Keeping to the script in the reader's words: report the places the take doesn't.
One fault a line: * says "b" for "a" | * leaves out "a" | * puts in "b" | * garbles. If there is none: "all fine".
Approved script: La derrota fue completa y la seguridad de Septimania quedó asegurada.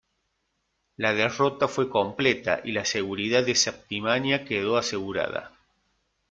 all fine